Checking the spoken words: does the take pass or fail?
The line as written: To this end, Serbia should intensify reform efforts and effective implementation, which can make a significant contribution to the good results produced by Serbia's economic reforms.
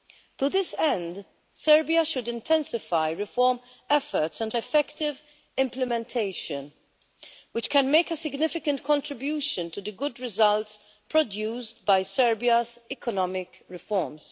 pass